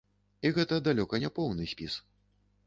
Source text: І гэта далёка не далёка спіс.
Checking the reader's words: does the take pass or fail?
fail